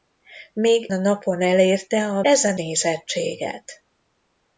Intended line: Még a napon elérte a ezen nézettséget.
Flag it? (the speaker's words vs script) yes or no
no